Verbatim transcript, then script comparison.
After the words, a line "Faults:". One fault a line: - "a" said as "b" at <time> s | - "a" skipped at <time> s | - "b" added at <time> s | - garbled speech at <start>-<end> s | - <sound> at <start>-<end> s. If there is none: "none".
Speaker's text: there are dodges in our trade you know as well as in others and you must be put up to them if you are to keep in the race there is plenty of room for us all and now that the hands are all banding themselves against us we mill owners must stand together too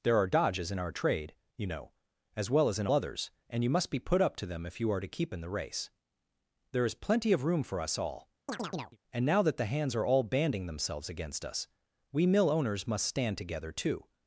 there are dodges in our trade you know as well as in others and you must be put up to them if you are to keep in the race there is plenty of room for us all and now that the hands are all banding themselves against us we mill owners must stand together too
Faults:
- chirp at 8.5-9.0 s